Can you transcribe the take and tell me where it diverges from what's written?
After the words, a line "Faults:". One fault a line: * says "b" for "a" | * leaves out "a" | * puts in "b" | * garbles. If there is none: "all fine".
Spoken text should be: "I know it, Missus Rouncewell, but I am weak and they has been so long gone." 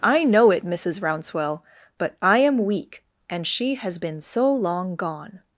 "I know it, Missus Rouncewell, but I am weak and she has been so long gone."
Faults:
* says "she" for "they"